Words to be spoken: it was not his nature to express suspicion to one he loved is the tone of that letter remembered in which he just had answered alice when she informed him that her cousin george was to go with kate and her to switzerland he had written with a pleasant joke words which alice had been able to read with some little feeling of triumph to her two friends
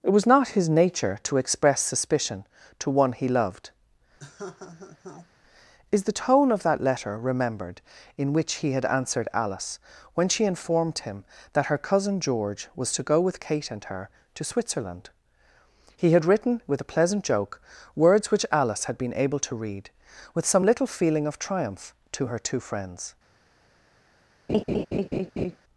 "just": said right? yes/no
no